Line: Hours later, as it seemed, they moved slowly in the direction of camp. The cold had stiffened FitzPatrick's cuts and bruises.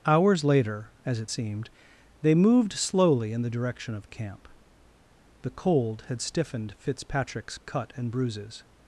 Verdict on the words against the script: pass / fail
fail